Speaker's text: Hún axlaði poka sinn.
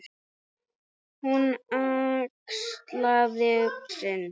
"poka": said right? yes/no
no